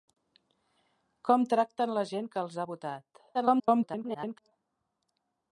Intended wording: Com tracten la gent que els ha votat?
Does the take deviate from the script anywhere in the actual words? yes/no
yes